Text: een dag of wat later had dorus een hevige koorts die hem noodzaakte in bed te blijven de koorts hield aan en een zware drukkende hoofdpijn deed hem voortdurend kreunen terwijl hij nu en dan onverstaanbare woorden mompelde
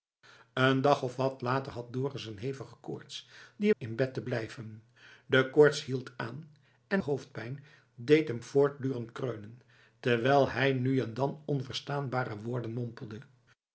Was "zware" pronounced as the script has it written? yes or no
no